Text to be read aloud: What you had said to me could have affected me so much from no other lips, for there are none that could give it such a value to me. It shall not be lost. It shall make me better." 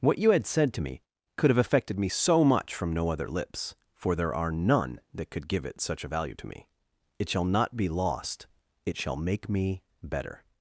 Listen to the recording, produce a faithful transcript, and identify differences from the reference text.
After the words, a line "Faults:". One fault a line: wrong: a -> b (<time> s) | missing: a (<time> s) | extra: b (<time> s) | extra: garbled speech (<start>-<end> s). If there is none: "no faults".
What you had said to me could have affected me so much from no other lips, for there are none that could give it such a value to me. It shall not be lost. It shall make me better."
Faults:
no faults